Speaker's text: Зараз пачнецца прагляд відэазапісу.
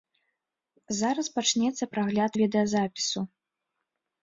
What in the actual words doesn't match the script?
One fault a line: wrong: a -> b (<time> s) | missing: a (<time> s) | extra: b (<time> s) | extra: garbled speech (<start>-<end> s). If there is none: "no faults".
no faults